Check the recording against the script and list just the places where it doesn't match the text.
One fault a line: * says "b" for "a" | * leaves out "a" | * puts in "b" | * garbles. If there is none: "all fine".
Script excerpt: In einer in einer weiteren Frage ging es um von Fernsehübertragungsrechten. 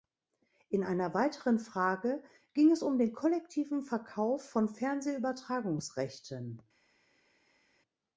* leaves out "in einer"
* puts in "den kollektiven Verkauf"